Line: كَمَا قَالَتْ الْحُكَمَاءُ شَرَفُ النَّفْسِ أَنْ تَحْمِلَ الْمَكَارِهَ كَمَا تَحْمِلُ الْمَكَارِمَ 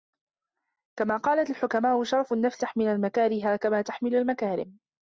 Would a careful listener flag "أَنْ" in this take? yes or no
yes